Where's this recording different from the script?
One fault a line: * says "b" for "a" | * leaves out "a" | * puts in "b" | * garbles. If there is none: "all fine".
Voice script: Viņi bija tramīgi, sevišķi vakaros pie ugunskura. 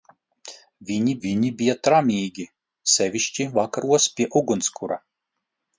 * puts in "viņi"